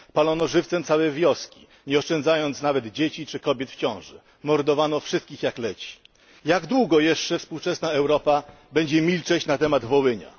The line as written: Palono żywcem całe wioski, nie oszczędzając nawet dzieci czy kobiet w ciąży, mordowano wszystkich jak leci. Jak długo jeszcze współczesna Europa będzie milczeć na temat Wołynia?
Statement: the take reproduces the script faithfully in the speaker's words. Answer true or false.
true